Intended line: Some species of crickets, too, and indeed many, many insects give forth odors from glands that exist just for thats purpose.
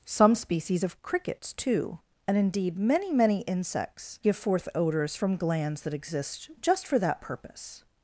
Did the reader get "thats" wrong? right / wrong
wrong